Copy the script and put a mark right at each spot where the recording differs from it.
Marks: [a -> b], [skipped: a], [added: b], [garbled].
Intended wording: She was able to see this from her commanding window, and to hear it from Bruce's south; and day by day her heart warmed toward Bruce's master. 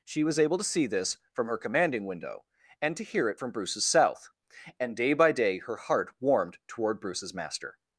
She was able to see this from her commanding window, and to hear it from Bruce's south; and day by day her heart warmed toward Bruce's master.